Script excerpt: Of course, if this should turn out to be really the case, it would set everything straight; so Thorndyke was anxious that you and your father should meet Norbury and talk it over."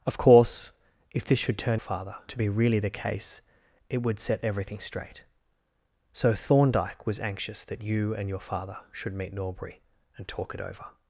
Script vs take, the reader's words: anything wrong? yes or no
yes